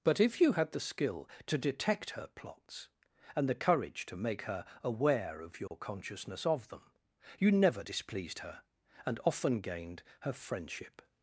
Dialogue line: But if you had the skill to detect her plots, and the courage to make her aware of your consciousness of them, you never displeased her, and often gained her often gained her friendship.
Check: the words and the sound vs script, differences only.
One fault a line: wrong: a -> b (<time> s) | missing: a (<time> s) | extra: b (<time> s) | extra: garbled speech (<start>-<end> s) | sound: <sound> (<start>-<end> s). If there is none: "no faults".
sound: dropout (5.7-5.7 s)
missing: often gained her (10.3 s)